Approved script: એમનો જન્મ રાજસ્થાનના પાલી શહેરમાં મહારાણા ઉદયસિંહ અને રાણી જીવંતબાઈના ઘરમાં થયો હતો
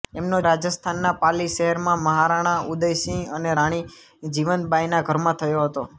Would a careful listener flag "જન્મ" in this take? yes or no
yes